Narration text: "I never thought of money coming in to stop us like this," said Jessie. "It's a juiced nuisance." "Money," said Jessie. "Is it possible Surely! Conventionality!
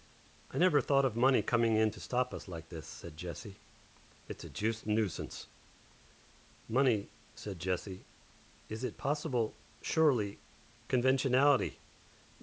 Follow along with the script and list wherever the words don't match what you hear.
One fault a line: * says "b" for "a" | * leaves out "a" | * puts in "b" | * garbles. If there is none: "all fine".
all fine